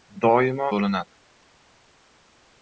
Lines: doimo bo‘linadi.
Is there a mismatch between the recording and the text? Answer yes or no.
no